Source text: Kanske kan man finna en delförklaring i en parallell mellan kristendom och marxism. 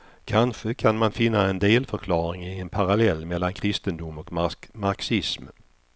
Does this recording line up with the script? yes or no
yes